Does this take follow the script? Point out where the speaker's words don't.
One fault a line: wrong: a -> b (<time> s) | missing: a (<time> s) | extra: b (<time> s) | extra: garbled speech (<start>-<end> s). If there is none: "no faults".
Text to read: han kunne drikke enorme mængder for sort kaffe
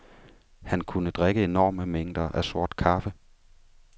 wrong: for -> af (2.3 s)